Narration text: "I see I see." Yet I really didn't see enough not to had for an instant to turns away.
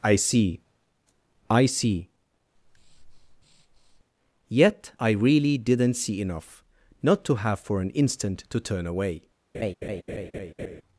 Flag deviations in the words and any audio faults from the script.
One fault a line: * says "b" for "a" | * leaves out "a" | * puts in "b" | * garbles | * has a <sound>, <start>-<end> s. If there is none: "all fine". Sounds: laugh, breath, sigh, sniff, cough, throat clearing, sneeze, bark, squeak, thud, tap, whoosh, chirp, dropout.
* has a breath, 2.6-4.0 s
* says "have" for "had"
* says "turn" for "turns"
* has a laugh, 9.5-10.8 s